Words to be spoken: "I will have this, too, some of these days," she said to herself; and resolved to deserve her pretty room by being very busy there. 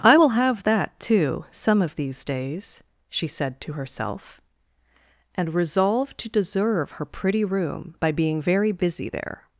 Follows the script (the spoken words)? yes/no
no